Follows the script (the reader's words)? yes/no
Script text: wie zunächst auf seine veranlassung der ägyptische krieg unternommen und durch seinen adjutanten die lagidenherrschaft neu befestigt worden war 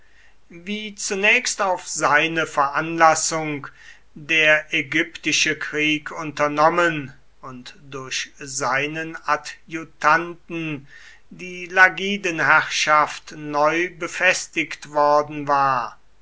yes